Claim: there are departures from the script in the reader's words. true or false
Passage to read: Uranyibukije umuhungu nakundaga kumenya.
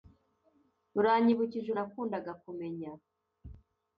true